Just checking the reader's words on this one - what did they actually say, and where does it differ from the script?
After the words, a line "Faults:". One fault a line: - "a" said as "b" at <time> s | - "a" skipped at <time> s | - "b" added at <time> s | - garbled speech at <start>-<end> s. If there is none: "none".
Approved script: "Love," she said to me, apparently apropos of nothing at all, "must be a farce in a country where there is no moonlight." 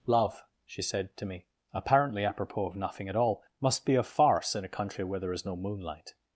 "Love," she said to me, apparently apropos of nothing at all, "must be a farce in a country where there is no moonlight."
Faults:
none